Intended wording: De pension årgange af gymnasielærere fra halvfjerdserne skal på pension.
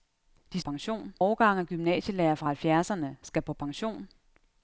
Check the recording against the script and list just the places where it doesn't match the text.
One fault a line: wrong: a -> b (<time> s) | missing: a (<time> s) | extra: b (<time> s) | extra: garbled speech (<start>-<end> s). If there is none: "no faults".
no faults